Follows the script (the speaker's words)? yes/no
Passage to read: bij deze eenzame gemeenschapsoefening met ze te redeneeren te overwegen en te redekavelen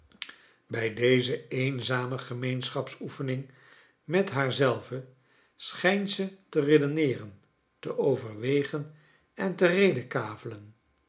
no